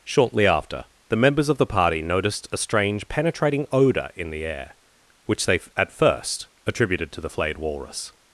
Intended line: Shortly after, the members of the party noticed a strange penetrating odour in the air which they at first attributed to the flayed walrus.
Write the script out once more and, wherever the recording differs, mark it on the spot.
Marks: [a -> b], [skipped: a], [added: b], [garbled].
Shortly after, the members of the party noticed a strange penetrating odour in the air which they at first attributed to the flayed walrus.